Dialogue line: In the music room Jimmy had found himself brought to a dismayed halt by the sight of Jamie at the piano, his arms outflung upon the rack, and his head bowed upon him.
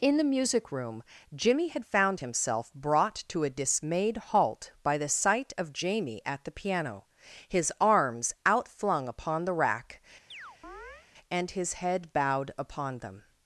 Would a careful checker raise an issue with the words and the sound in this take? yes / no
yes